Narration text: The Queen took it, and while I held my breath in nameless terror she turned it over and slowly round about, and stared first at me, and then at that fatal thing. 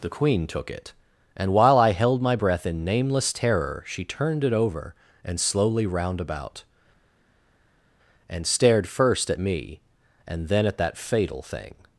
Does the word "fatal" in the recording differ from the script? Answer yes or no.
no